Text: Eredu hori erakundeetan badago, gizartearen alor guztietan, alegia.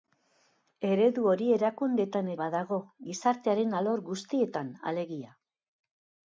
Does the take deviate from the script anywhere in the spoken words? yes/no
no